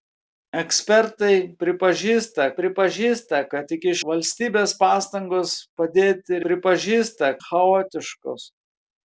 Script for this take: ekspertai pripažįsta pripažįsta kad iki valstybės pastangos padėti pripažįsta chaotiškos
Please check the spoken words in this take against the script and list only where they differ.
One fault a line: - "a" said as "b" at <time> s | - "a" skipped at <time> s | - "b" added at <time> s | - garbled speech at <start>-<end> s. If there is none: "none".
none